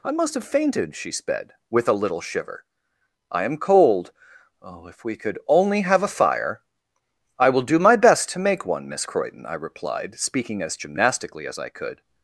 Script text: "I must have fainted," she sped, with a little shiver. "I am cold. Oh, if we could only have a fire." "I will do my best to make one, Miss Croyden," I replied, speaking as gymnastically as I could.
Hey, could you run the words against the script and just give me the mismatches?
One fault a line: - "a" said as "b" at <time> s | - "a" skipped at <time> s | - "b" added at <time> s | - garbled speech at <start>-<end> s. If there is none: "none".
none